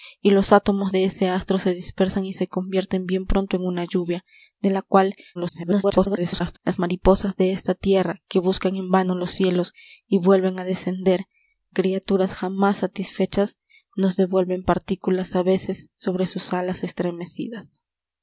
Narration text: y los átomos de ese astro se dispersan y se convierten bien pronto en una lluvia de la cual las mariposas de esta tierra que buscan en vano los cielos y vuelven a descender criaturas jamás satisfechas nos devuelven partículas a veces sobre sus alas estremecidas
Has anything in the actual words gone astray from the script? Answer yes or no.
yes